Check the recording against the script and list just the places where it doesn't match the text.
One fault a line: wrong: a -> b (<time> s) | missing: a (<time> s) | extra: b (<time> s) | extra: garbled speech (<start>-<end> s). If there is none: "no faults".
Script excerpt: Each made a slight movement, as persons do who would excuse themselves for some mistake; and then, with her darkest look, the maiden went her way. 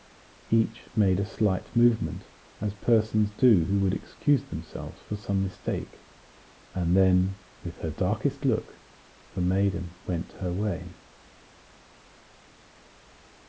no faults